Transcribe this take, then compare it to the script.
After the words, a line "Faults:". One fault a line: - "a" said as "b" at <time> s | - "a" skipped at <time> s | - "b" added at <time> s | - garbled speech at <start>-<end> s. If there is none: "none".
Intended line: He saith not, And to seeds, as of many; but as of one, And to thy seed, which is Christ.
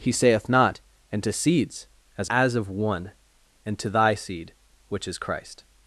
He saith not, And to seeds, as as of one, And to thy seed, which is Christ.
Faults:
- "of many but" skipped at 2.3 s